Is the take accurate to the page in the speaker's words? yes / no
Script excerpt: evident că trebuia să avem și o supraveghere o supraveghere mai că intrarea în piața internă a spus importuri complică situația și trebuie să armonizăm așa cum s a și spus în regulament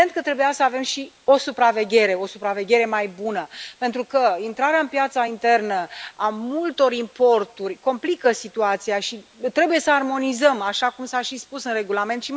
no